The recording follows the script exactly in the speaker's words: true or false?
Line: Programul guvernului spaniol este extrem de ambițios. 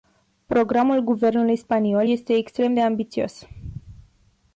true